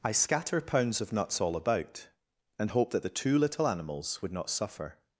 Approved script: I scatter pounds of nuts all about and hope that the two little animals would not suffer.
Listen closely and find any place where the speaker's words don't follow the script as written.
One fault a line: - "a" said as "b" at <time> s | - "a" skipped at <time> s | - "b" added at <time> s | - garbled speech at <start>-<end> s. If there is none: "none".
none